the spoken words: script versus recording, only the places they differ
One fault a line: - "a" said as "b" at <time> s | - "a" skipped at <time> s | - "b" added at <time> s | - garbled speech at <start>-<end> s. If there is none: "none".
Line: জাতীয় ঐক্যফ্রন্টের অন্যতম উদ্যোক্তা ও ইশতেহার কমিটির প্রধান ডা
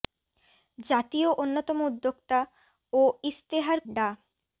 - "ঐক্যফ্রন্টের" skipped at 1.3 s
- "কমিটির প্রধান" skipped at 3.8 s